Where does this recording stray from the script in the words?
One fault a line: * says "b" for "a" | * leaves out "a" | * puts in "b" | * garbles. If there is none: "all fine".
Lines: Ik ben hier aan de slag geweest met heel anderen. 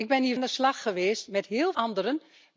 all fine